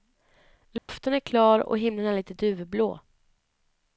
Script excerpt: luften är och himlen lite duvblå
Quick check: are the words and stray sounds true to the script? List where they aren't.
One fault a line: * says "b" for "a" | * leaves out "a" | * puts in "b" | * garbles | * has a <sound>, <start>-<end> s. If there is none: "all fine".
* has a dropout, 0.8-0.9 s
* puts in "klar"
* puts in "är"